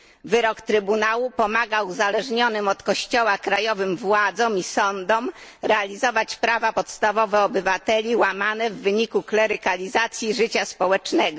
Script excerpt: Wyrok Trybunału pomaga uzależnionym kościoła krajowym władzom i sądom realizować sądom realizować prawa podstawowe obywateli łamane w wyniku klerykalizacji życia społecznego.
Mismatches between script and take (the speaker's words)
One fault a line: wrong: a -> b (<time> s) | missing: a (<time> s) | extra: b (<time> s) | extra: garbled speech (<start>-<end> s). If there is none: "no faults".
extra: od (2.7 s)
missing: sądom realizować (6.4 s)